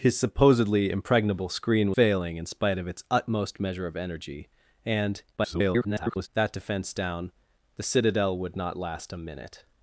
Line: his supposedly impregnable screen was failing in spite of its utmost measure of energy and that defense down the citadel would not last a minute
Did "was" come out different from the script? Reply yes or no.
yes